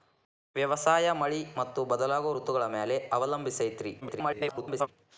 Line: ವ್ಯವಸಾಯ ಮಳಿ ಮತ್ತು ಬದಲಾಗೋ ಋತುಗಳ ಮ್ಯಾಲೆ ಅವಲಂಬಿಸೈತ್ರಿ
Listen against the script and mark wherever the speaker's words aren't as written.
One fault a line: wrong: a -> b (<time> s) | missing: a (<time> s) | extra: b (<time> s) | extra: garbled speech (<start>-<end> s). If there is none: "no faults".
extra: garbled speech (4.0-4.9 s)